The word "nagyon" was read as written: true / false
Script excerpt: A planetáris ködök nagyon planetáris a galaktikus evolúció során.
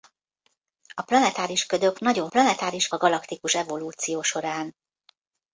true